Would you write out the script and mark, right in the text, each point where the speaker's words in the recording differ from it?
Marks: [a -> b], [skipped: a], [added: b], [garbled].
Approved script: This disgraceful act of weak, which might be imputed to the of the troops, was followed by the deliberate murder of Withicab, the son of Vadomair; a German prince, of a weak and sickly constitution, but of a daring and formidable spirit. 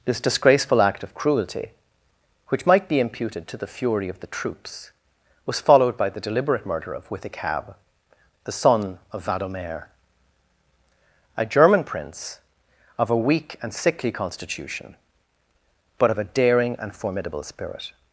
This disgraceful act of [weak, -> cruelty] which might be imputed to the [added: fury] of the troops, was followed by the deliberate murder of Withicab, the son of Vadomair; a German prince, of a weak and sickly constitution, but of a daring and formidable spirit.